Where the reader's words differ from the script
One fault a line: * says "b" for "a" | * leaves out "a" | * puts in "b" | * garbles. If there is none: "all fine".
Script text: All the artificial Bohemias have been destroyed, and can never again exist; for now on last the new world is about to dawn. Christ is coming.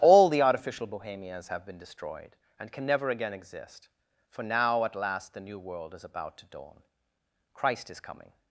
* says "at" for "on"